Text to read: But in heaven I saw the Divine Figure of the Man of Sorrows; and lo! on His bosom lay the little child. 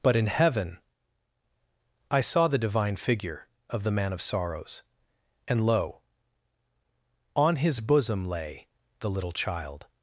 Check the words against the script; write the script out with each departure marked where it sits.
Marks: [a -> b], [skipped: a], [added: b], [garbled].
But in heaven I saw the Divine Figure of the Man of Sorrows; and lo! on His bosom lay the little child.